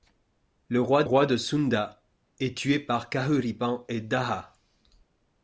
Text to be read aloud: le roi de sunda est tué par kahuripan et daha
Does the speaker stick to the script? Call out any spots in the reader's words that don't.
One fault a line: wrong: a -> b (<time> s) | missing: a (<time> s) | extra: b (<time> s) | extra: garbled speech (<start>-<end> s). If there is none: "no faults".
extra: roi (1.0 s)